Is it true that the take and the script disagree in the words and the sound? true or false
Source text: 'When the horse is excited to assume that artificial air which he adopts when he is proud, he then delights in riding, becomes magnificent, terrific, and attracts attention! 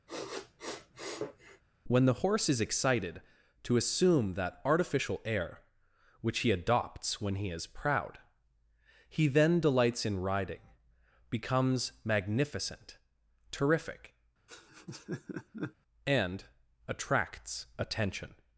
true